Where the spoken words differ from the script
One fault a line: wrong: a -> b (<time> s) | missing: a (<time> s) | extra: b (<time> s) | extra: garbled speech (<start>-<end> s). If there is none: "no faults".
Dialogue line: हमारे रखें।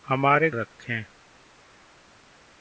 no faults